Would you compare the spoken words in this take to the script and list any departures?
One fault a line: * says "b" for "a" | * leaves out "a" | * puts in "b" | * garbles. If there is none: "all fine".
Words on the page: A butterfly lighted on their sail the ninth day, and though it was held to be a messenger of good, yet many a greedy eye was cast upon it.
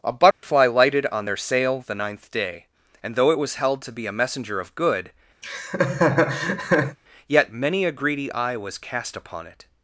all fine